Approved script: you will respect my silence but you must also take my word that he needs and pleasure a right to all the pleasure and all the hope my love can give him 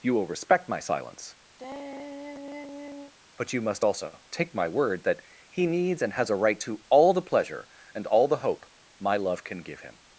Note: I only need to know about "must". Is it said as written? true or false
true